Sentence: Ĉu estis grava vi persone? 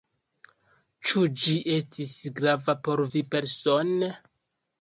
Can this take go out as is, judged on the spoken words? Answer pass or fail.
fail